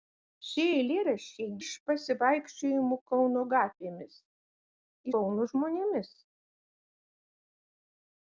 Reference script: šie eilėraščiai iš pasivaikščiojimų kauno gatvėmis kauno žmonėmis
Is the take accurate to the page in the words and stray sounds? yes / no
yes